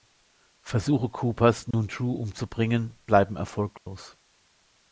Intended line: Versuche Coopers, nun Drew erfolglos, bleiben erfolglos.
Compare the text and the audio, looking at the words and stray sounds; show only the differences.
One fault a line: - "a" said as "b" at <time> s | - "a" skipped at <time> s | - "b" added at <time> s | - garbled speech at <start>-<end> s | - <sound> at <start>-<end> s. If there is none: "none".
- dropout at 1.7-1.7 s
- "erfolglos" said as "umzubringen" at 2.1 s
- dropout at 3.8-3.9 s